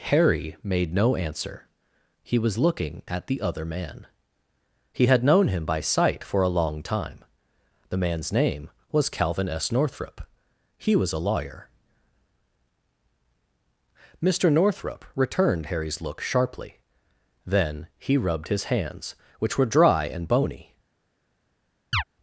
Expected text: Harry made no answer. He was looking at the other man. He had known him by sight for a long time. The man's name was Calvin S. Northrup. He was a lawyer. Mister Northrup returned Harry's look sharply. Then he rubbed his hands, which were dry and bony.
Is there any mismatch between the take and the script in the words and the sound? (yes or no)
yes